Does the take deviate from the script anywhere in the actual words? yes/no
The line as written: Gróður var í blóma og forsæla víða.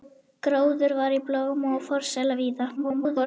yes